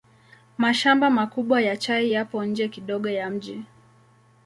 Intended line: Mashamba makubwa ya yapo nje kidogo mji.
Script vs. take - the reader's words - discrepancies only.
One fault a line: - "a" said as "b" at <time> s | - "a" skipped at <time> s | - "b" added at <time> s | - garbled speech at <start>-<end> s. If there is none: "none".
- "chai" added at 1.8 s
- "ya" added at 3.1 s